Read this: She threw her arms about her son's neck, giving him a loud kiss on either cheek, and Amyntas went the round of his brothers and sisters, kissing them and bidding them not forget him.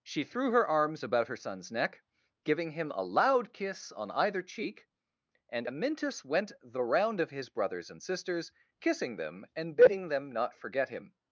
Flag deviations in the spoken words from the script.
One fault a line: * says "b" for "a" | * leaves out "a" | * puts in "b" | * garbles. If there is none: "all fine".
all fine